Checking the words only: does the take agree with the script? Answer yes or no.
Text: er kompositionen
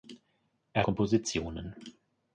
yes